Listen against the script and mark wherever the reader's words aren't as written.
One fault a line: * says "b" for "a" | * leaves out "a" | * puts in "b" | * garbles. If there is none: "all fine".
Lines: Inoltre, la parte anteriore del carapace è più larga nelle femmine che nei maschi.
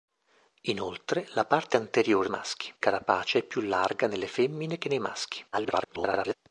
* says "maschi" for "del"
* garbles